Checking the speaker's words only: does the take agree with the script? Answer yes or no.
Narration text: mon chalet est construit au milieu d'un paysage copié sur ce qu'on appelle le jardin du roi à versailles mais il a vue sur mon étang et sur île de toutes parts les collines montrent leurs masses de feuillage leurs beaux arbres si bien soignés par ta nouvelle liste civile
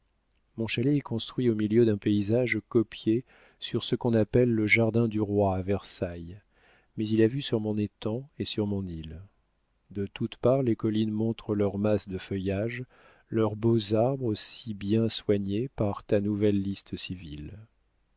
no